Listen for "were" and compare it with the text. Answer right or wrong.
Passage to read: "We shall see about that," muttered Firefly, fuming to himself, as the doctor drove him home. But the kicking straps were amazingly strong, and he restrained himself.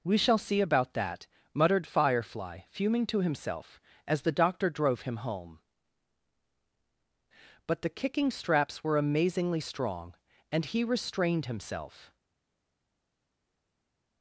right